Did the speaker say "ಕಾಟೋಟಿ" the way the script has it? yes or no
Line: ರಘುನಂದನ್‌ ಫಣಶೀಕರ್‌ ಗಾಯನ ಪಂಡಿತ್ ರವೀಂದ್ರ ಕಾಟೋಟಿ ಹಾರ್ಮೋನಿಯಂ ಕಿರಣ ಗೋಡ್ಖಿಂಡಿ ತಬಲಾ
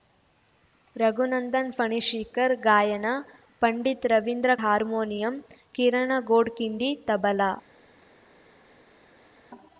no